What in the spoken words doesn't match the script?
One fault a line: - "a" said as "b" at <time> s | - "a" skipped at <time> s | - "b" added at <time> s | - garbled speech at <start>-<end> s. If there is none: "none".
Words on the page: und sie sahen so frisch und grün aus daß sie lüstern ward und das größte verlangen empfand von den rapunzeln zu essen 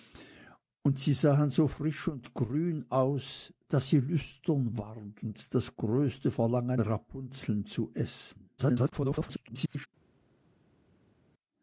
- "empfand von den" skipped at 6.8 s
- garbled speech at 8.6-9.9 s